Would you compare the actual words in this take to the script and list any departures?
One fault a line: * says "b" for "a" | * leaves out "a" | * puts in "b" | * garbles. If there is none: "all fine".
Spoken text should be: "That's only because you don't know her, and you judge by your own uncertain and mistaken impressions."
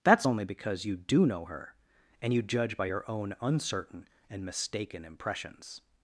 * says "do" for "don't"